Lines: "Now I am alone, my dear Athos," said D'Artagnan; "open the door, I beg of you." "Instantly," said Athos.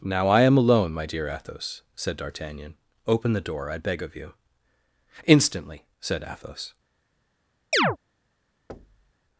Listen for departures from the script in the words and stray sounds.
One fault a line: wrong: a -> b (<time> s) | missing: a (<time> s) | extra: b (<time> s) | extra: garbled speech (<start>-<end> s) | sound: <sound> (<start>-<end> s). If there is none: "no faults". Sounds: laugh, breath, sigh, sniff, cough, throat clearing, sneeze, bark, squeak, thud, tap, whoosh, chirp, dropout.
sound: chirp (7.7-8.0 s)
sound: thud (8.7-9.1 s)